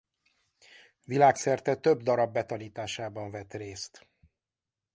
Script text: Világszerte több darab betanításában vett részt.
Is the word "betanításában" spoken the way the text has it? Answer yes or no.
yes